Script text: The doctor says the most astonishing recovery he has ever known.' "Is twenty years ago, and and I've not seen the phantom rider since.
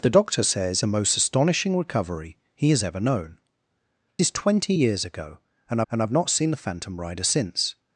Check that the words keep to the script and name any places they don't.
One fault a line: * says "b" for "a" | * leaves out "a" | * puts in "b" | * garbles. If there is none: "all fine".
all fine